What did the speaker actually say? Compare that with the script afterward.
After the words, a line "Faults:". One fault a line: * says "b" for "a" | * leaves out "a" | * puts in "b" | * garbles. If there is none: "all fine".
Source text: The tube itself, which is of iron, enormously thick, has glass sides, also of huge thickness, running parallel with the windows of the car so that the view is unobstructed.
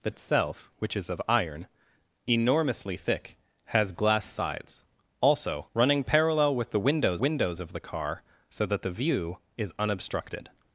The itself, which is of iron, enormously thick, has glass sides, also running parallel with the windows windows of the car so that the view is unobstructed.
Faults:
* leaves out "tube"
* leaves out "of huge thickness"
* puts in "windows"